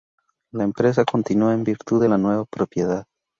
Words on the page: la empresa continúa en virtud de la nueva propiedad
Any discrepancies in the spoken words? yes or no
no